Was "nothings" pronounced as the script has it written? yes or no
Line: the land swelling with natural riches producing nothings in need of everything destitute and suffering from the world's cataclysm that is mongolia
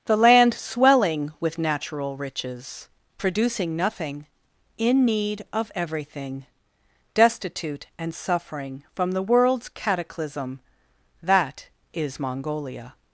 no